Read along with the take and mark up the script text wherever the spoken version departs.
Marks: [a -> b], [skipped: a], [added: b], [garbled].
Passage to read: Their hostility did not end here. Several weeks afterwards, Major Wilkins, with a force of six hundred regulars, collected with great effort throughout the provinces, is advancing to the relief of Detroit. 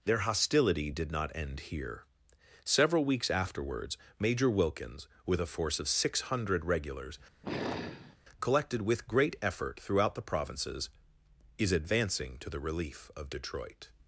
Their hostility did not end here. Several weeks afterwards, Major Wilkins, with a force of six hundred regulars, collected with great effort throughout the provinces, is advancing to the relief of Detroit.